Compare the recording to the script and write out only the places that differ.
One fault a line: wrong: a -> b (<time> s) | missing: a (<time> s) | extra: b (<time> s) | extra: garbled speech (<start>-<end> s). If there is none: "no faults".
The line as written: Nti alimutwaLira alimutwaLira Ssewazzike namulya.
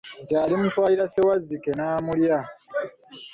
missing: alimutwaLira (1.1 s)